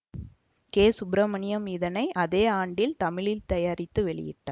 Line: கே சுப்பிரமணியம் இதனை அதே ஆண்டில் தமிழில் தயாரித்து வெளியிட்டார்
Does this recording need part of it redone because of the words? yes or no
no